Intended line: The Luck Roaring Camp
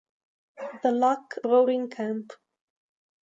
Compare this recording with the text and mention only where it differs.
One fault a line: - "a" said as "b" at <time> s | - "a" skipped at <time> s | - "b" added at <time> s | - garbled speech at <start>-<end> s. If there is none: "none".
none